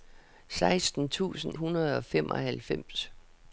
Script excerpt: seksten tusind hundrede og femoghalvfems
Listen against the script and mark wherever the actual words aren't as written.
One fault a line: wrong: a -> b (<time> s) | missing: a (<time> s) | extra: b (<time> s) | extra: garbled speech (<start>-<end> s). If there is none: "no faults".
no faults